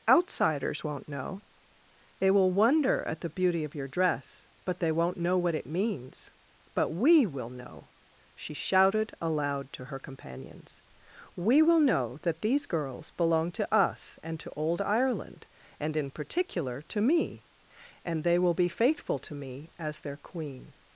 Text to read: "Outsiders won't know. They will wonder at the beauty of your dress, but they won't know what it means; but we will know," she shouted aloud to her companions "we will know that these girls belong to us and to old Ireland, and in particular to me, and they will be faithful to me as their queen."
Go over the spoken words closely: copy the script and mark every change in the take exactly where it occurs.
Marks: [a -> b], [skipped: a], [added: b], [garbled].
"Outsiders won't know. They will wonder at the beauty of your dress, but they won't know what it means; but we will know," she shouted aloud to her companions "we will know that these girls belong to us and to old Ireland, and in particular to me, and they will be faithful to me as their queen."